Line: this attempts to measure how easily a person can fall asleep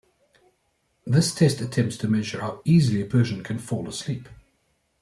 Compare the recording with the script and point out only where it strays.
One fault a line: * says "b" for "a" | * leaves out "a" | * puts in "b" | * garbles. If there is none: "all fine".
* puts in "test"